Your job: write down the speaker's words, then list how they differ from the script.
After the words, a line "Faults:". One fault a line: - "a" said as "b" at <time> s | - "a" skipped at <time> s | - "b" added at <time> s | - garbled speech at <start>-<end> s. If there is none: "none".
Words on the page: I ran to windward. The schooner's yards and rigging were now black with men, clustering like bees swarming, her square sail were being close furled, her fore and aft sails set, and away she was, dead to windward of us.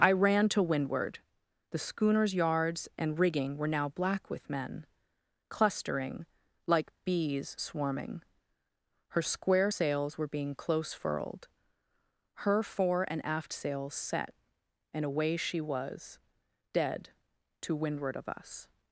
I ran to windward. The schooner's yards and rigging were now black with men, clustering like bees swarming, her square sails were being close furled, her fore and aft sails set, and away she was, dead to windward of us.
Faults:
- "sail" said as "sails" at 9.7 s